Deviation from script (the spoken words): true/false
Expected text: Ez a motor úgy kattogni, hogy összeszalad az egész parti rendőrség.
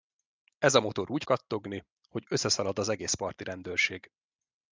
false